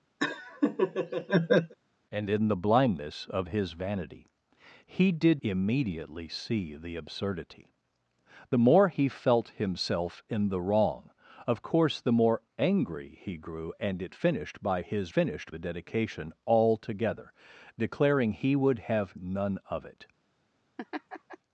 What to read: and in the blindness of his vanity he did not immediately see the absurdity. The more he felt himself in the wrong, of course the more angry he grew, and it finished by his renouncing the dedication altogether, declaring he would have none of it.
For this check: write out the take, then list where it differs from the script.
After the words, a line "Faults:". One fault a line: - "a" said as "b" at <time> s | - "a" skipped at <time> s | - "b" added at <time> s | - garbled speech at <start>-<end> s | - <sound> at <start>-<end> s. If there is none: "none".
and in the blindness of his vanity he did immediately see the absurdity. The more he felt himself in the wrong, of course the more angry he grew, and it finished by his finished the dedication altogether, declaring he would have none of it.
Faults:
- laugh at 0.2-1.7 s
- "not" skipped at 5.4 s
- "renouncing" said as "finished" at 15.1 s
- laugh at 20.8-21.4 s